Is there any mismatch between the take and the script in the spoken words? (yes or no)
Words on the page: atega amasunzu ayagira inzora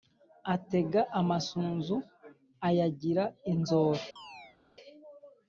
no